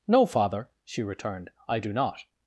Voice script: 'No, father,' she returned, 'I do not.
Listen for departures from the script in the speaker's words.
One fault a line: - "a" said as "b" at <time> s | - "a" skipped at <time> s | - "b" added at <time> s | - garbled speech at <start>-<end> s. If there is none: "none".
none